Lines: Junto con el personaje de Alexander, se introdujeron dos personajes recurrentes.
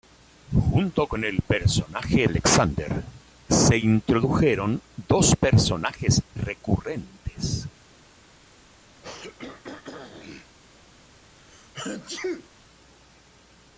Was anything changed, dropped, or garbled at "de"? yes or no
yes